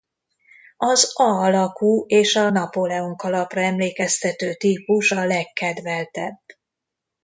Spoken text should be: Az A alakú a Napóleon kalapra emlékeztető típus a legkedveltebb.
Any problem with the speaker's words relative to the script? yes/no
yes